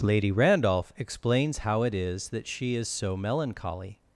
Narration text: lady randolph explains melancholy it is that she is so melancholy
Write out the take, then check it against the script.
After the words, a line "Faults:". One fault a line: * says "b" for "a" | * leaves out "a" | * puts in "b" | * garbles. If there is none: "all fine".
lady randolph explains how it is that she is so melancholy
Faults:
* says "how" for "melancholy"